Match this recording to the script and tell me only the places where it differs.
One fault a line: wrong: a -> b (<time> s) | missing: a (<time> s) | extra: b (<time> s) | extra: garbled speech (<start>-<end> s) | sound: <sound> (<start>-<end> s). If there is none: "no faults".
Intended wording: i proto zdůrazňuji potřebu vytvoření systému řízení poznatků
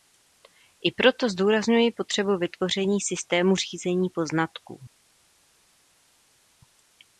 no faults